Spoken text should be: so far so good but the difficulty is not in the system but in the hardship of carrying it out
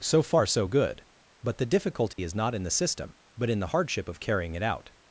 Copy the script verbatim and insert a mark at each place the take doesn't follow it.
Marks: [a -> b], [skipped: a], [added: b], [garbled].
so far so good but the difficulty is not in the system but in the hardship of carrying it out